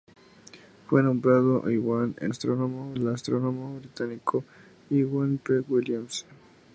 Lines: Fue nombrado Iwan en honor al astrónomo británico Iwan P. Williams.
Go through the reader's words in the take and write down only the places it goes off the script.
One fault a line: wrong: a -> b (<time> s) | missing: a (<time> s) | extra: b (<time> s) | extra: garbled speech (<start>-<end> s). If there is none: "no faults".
wrong: honor -> astrónomo (2.3 s)